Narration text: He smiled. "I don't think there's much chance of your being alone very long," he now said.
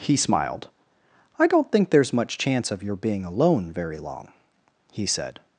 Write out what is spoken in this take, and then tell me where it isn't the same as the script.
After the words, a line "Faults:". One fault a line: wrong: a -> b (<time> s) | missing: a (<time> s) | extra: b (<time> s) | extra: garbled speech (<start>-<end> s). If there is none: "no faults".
He smiled. "I don't think there's much chance of your being alone very long," he said.
Faults:
missing: now (5.1 s)